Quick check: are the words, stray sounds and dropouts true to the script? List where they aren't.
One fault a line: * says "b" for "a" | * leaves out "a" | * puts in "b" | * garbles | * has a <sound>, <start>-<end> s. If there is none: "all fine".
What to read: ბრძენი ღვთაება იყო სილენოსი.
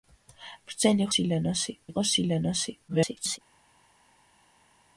* says "სილენოსი" for "ღვთაება"
* garbles